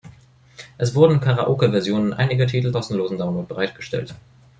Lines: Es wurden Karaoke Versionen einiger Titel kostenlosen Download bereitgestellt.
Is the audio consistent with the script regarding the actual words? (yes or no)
yes